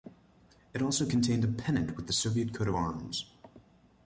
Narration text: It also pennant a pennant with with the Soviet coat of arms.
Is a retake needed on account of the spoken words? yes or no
yes